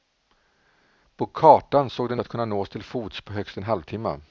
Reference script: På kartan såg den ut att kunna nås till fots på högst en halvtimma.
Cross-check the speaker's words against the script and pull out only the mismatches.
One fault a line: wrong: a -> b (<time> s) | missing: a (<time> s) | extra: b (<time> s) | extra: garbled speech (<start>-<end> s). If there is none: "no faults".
missing: ut (2.2 s)